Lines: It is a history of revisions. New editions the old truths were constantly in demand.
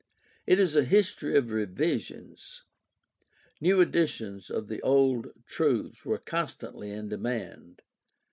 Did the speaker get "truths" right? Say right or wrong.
right